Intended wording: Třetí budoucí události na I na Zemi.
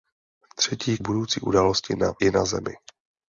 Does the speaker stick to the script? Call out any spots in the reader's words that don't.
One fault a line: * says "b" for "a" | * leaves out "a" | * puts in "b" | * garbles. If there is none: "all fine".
all fine